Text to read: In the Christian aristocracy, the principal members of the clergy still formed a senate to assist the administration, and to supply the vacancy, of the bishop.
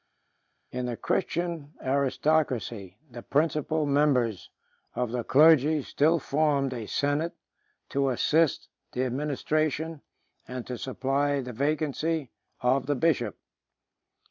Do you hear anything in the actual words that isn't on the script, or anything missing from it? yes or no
no